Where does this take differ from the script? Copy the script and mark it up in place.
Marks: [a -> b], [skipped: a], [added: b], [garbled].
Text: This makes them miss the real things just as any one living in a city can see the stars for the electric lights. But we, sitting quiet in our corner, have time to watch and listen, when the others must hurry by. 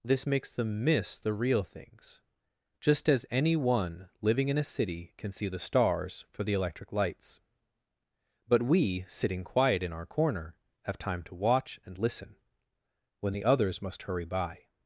This makes them miss the real things just as any one living in a city can see the stars for the electric lights. But we, sitting quiet in our corner, have time to watch and listen, when the others must hurry by.